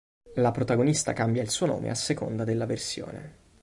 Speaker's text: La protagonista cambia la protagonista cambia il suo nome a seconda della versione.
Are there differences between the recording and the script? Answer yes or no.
yes